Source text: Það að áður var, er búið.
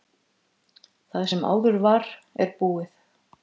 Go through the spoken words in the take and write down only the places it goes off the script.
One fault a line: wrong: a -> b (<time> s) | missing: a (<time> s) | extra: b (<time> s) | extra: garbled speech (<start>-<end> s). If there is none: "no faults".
wrong: að -> sem (1.3 s)